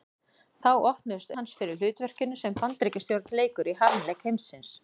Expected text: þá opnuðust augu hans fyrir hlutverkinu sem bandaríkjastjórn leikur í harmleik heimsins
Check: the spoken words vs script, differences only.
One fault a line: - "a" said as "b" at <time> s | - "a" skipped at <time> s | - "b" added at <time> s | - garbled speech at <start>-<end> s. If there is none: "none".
- "augu" skipped at 1.3 s